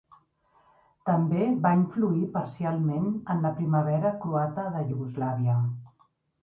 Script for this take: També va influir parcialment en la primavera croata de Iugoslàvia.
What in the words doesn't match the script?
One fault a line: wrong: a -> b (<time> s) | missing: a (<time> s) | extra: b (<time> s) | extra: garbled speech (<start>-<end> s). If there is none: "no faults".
no faults